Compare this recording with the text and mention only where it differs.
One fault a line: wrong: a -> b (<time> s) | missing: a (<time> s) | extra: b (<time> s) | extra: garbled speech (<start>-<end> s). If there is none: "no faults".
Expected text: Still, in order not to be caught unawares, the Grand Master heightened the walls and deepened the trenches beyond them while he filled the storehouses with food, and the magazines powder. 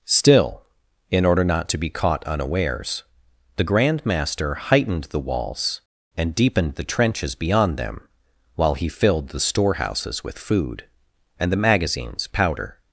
no faults